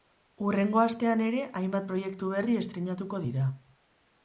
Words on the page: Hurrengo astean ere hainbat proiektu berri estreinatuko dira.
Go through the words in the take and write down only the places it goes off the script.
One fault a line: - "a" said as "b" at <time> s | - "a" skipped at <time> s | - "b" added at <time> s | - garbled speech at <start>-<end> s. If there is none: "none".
none